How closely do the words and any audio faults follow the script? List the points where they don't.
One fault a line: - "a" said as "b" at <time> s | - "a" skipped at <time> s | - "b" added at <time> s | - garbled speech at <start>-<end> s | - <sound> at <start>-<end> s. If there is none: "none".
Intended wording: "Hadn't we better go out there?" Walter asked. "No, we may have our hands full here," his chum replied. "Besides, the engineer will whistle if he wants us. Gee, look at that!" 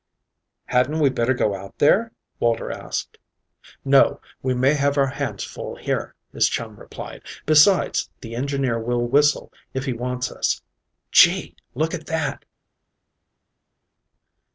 none